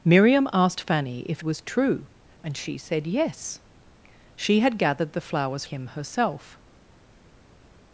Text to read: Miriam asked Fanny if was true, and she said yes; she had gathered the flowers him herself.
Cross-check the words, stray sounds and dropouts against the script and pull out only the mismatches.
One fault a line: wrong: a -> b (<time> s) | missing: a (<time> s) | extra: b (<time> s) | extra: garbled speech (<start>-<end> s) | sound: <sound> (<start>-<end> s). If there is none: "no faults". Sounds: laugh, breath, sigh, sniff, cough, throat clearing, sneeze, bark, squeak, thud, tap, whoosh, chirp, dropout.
no faults